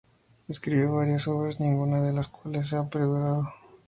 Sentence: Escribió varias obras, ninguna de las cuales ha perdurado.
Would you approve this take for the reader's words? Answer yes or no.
yes